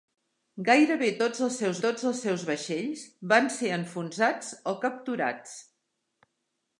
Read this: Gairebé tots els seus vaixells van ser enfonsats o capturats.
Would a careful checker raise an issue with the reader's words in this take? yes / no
yes